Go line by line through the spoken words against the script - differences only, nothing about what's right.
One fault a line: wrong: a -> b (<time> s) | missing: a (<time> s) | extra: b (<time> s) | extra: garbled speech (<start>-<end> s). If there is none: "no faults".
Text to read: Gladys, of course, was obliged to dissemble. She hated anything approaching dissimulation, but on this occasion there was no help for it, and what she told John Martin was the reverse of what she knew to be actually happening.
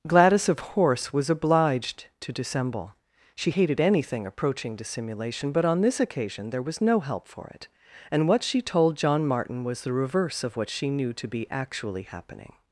wrong: course -> horse (0.6 s)